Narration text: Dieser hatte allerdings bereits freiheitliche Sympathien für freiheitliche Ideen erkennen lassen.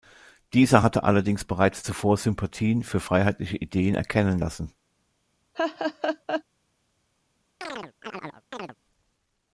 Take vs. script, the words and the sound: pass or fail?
fail